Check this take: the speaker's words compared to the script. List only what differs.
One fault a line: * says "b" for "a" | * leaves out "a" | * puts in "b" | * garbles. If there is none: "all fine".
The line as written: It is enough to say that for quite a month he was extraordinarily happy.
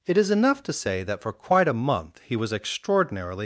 * leaves out "happy"